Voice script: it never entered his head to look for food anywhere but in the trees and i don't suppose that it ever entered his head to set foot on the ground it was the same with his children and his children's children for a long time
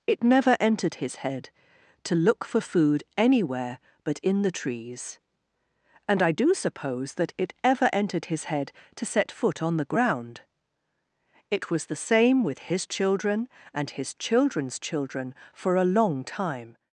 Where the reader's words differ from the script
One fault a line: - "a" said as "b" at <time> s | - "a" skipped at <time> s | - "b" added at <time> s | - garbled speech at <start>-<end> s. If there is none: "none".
- "don't" said as "do" at 6.3 s